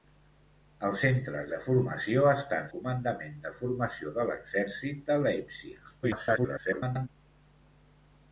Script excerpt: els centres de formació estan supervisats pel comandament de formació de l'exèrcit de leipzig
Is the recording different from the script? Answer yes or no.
yes